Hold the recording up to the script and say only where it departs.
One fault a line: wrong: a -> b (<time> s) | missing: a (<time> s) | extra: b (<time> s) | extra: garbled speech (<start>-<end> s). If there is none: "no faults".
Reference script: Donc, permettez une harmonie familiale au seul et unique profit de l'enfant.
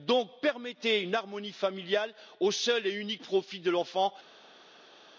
no faults